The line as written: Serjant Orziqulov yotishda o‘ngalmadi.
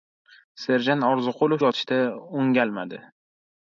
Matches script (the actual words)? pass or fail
pass